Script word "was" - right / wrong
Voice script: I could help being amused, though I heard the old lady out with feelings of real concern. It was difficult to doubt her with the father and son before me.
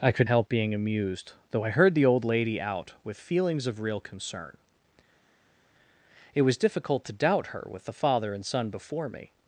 right